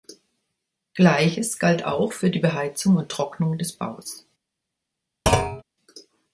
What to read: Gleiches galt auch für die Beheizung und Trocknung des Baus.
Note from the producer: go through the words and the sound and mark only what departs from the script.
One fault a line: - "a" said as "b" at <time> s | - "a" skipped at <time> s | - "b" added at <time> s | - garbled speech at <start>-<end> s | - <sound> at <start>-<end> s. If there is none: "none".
- thud at 5.3-5.6 s